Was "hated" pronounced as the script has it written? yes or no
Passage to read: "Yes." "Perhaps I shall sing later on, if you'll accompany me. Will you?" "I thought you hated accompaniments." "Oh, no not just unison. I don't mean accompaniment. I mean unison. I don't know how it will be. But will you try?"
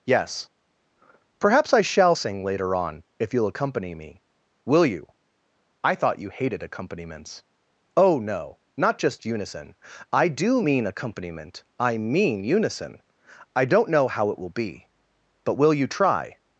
yes